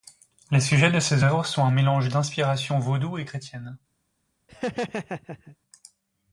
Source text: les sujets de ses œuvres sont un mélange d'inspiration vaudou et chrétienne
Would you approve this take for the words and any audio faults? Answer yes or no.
no